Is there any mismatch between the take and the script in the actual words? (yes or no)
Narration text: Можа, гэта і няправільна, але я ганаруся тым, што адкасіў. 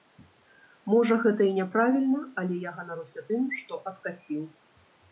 no